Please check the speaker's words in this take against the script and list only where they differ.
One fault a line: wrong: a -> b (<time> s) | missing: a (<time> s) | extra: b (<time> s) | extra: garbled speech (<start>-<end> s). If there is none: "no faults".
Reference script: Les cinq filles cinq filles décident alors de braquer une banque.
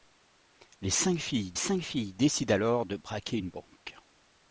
no faults